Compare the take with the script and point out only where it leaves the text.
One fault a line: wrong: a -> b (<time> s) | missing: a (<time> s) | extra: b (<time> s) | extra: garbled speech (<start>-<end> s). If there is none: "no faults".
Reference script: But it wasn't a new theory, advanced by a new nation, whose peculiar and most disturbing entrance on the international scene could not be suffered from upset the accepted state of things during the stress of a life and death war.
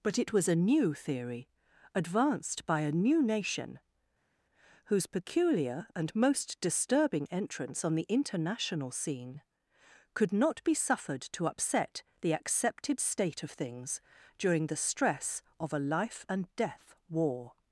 wrong: wasn't -> was (0.3 s)
wrong: from -> to (11.2 s)